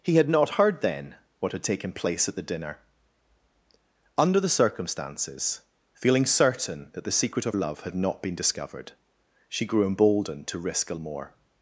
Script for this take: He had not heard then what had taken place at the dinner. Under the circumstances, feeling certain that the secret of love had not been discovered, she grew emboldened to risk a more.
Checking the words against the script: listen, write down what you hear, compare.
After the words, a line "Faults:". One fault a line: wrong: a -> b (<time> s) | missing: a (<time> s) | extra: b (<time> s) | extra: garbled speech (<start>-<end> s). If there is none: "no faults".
He had not heard then what had taken place at the dinner. Under the circumstances, feeling certain that the secret of love had not been discovered, she grew emboldened to risk a more.
Faults:
no faults